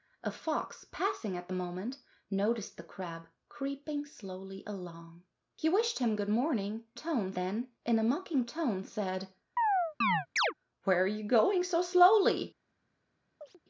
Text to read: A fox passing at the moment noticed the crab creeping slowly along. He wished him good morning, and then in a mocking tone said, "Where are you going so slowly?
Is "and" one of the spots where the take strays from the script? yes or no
yes